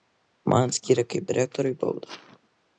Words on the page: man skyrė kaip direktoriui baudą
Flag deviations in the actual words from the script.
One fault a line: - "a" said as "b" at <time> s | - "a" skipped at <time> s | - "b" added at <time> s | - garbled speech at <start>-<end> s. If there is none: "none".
none